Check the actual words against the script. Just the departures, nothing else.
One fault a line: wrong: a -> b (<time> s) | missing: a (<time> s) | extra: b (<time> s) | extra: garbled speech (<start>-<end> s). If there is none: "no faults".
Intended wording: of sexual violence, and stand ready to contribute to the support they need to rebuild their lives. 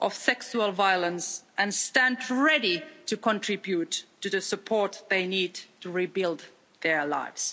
no faults